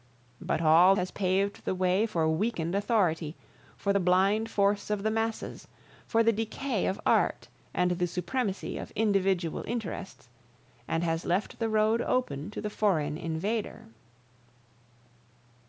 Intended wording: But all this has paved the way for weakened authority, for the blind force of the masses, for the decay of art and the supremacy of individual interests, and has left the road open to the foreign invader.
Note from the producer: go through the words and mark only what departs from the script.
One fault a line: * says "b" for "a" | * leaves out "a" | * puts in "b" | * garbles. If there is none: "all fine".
* leaves out "this"